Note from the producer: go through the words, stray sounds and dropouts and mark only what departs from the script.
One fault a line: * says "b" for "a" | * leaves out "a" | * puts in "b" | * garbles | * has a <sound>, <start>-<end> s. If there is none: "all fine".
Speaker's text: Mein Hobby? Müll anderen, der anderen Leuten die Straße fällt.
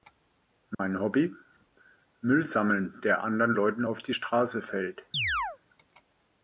* has a dropout, 0.7-0.8 s
* says "sammeln" for "anderen"
* puts in "auf"
* has a chirp, 5.1-5.6 s